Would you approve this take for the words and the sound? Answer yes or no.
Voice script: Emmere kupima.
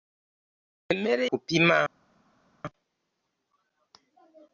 yes